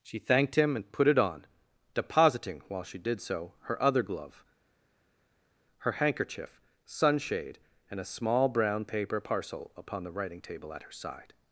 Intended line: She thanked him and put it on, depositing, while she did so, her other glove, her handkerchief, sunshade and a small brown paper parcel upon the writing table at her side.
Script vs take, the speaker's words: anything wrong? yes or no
no